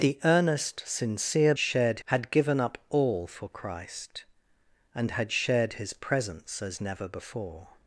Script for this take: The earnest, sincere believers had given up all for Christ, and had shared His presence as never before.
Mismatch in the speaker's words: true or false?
true